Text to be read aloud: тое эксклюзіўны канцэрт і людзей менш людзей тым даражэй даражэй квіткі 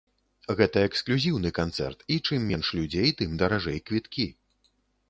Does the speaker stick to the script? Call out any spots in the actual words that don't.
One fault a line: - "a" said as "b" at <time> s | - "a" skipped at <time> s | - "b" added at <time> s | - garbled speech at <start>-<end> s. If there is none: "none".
- "тое" said as "гэта" at 0.6 s
- "людзей" said as "чым" at 2.3 s
- "даражэй" skipped at 3.8 s